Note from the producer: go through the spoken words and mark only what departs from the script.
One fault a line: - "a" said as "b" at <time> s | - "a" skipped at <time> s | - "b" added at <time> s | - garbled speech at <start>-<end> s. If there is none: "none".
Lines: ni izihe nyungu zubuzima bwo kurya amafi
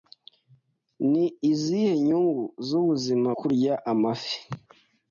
- "bwo" skipped at 3.3 s